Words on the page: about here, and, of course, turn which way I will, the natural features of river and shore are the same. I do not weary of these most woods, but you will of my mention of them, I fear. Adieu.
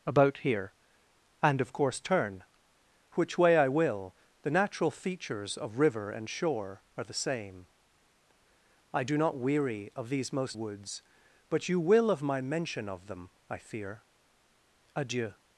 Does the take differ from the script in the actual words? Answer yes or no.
no